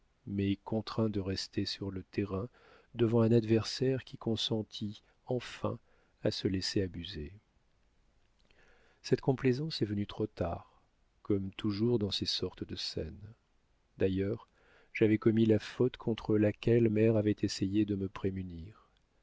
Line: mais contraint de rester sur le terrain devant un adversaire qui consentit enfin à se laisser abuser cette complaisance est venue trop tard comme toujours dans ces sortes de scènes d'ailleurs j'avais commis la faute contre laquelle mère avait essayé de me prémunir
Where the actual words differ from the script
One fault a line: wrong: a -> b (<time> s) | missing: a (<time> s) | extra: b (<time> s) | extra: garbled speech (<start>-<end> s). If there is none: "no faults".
no faults